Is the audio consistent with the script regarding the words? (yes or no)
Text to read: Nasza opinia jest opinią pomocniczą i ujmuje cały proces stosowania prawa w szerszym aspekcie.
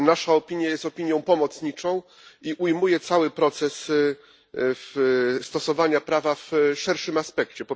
yes